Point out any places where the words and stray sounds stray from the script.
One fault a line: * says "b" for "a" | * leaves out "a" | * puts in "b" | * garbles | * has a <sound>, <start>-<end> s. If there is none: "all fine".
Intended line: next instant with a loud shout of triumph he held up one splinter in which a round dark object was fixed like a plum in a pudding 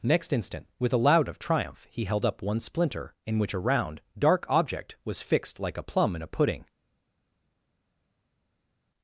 * leaves out "shout"